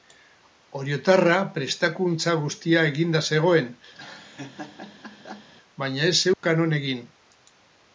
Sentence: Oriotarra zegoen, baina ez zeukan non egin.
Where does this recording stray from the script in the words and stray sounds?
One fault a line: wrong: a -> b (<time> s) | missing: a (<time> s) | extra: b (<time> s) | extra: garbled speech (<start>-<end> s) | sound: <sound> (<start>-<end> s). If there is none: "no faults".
extra: prestakuntza guztia eginda (1.6 s)
sound: laugh (4.0-5.5 s)
sound: dropout (6.3-6.4 s)